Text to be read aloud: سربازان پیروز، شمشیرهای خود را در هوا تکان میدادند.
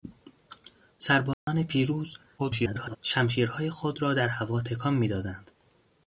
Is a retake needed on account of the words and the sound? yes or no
yes